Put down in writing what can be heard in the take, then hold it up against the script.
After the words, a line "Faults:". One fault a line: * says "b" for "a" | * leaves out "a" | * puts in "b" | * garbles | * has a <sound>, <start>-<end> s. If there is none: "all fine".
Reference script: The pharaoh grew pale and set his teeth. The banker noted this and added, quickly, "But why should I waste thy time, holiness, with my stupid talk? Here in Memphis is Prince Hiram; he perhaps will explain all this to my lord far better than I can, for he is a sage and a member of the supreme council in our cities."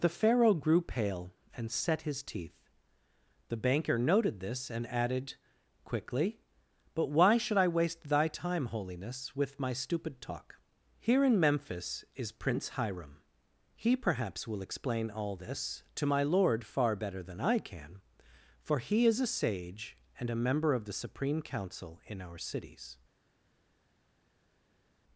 The pharaoh grew pale and set his teeth. The banker noted this and added, quickly, "But why should I waste thy time, holiness, with my stupid talk? Here in Memphis is Prince Hiram; he perhaps will explain all this to my lord far better than I can, for he is a sage and a member of the supreme council in our cities."
Faults:
all fine